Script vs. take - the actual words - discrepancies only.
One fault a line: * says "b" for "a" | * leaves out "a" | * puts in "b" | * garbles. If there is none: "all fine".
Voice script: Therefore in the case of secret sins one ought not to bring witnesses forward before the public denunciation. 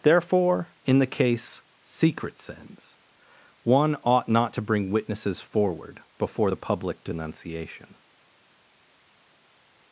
* leaves out "of"